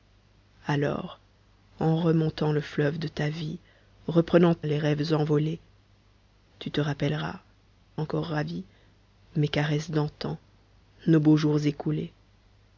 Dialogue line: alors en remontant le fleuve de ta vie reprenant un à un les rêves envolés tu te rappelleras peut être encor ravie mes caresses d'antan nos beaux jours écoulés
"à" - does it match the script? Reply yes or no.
no